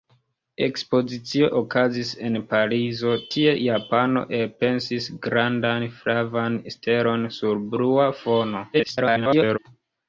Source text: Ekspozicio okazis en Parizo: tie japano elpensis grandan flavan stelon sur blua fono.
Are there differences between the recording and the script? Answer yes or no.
yes